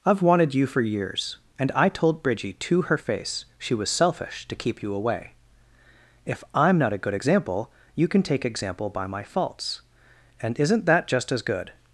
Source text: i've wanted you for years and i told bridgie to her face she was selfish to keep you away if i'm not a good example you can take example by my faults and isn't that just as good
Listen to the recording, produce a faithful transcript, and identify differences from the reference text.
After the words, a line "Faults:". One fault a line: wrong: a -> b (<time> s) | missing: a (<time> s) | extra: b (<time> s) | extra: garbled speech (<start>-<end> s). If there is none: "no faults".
i've wanted you for years and i told bridgie to her face she was selfish to keep you away if i'm not a good example you can take example by my faults and isn't that just as good
Faults:
no faults